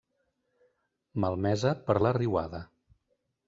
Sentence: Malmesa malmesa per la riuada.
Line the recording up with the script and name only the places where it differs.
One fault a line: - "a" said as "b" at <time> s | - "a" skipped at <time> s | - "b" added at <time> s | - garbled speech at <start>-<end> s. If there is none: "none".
- "malmesa" skipped at 1.8 s